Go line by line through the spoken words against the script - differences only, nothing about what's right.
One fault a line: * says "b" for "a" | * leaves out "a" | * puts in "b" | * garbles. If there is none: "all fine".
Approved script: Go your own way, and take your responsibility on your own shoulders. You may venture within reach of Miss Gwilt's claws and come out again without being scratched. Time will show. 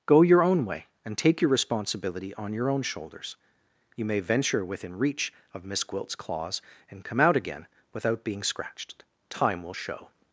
all fine